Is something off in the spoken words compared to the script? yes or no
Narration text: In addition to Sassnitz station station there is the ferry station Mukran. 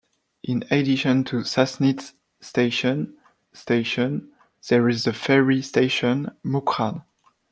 no